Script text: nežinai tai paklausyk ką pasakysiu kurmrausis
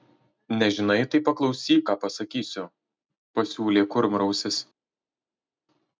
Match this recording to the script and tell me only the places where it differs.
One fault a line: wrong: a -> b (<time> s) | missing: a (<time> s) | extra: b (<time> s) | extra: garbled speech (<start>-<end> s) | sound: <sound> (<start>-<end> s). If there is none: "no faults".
extra: pasiūlė (3.4 s)